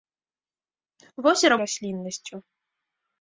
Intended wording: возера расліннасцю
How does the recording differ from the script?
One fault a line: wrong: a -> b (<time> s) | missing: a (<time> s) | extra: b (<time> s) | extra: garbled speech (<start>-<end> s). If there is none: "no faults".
no faults